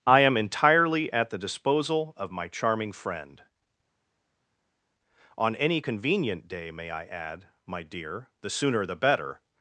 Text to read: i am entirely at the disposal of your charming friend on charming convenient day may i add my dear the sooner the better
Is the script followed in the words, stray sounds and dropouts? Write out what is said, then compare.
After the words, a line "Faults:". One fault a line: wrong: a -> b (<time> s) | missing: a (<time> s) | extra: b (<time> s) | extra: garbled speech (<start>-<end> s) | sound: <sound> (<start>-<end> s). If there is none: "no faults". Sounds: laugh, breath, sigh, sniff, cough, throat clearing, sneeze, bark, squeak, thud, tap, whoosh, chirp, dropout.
i am entirely at the disposal of my charming friend on any convenient day may i add my dear the sooner the better
Faults:
wrong: your -> my (2.3 s)
wrong: charming -> any (5.5 s)